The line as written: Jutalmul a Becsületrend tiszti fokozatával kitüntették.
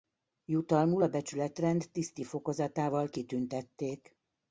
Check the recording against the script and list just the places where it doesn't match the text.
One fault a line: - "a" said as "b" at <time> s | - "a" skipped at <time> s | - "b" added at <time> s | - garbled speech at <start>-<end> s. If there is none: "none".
none